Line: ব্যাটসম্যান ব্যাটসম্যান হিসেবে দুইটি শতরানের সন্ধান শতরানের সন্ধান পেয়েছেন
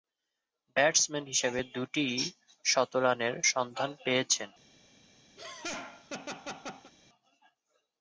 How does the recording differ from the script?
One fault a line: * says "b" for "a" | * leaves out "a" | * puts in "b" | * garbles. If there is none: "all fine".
* leaves out "ব্যাটসম্যান"
* leaves out "শতরানের সন্ধান"